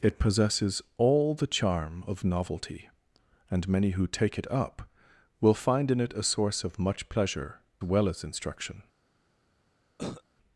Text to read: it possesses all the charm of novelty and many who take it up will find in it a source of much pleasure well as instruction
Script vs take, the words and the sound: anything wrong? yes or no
yes